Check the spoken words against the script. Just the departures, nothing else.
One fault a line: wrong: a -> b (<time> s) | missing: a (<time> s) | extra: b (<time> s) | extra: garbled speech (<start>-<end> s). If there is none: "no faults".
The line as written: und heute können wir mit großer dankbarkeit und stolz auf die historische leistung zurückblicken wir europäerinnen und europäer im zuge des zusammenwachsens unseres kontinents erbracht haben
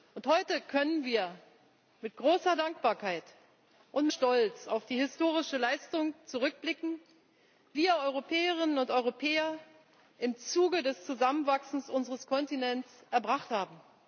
no faults